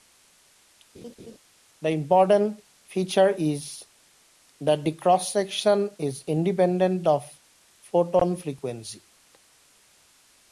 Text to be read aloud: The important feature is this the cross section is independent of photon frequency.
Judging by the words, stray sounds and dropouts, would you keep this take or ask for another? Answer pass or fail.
fail